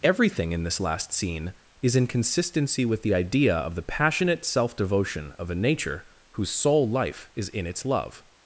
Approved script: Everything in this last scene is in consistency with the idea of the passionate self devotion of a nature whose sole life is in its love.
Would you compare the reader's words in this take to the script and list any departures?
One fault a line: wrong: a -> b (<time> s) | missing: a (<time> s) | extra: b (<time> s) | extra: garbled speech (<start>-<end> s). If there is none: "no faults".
no faults